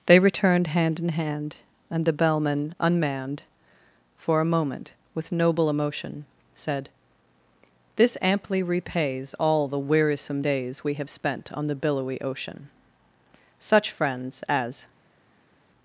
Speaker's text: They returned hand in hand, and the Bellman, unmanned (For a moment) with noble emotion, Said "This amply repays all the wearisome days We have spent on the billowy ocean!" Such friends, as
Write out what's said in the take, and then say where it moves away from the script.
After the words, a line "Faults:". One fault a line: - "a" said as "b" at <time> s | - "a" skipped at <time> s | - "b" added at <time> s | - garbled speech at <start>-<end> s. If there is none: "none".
They returned hand in hand, and the Bellman, unmanned (For a moment) with noble emotion, Said "This amply repays all the wearisome days We have spent on the billowy ocean!" Such friends, as
Faults:
none